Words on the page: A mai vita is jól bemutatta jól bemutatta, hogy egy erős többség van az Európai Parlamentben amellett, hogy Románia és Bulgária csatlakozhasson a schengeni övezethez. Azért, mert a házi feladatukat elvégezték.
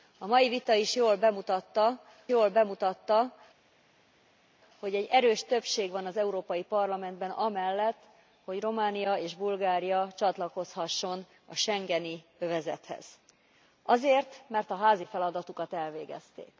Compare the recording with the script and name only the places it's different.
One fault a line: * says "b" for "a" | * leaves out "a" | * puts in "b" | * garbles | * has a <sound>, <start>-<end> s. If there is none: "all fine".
all fine